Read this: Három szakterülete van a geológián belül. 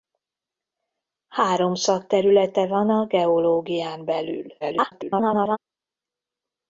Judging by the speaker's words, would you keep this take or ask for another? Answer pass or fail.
fail